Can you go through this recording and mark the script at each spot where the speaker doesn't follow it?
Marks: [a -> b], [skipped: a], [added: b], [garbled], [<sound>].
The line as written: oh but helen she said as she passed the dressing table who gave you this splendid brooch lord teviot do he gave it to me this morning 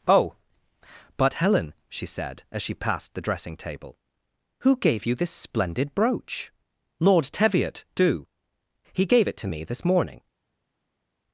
oh but helen she said as she passed the dressing table who gave you this splendid brooch lord teviot do he gave it to me this morning